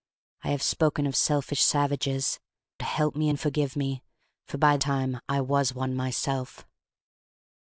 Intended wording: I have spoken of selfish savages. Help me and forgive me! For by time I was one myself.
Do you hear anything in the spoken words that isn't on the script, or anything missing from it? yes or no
no